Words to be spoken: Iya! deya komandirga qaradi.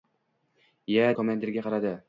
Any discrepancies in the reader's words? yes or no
yes